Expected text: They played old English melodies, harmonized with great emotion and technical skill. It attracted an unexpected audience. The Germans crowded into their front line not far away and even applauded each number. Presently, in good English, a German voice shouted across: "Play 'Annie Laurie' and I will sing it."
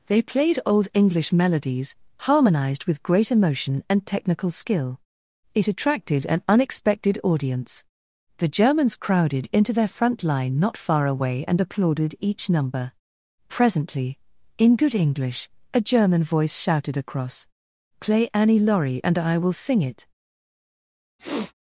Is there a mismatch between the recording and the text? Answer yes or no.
yes